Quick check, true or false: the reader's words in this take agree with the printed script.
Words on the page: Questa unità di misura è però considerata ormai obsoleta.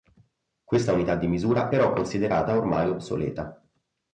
false